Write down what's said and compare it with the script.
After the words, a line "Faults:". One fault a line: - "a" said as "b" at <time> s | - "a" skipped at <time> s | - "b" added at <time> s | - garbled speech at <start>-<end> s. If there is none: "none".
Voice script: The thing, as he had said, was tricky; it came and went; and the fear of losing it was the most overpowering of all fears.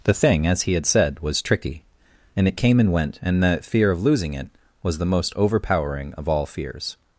The thing, as he had said, was tricky; and it came and went; and the fear of losing it was the most overpowering of all fears.
Faults:
- "and" added at 2.4 s